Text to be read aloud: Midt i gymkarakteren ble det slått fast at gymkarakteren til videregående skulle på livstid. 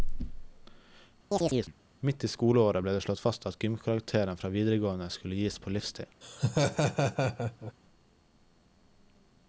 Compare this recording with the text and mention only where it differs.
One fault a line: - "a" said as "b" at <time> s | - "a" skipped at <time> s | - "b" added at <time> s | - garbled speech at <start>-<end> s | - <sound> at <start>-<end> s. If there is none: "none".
- chirp at 1.3-1.7 s
- "gymkarakteren" said as "skoleåret" at 2.3 s
- "til" said as "fra" at 4.4 s
- "gis" added at 5.4 s
- laugh at 6.2-7.7 s